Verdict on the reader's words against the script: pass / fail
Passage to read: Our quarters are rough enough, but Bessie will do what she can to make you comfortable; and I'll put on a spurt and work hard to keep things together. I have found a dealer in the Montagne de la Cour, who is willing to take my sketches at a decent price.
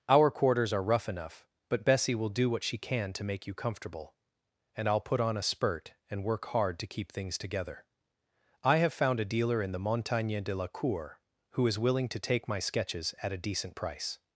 pass